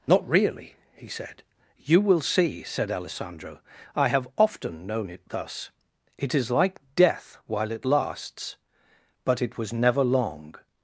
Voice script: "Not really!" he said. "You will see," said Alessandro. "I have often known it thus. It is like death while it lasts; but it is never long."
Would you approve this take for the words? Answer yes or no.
no